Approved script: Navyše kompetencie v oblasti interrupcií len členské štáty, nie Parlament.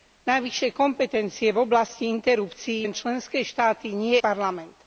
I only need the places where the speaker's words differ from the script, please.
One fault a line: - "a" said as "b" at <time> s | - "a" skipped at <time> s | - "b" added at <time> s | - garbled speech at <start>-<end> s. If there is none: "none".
none